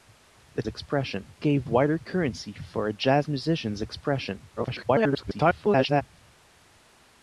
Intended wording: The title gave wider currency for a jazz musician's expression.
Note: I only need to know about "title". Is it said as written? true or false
false